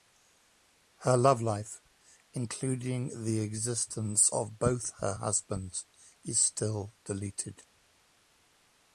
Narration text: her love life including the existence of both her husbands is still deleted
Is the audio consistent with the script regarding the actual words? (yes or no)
yes